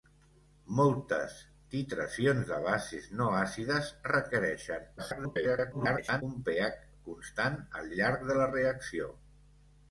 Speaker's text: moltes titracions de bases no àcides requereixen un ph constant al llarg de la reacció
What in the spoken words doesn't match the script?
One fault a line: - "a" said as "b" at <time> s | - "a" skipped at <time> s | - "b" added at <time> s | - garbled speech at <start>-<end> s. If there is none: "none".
- garbled speech at 5.0-6.2 s